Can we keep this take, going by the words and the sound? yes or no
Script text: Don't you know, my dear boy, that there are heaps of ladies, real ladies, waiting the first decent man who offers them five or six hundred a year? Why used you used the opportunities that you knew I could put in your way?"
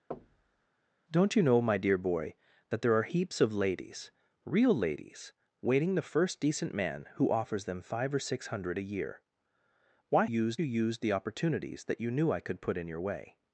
no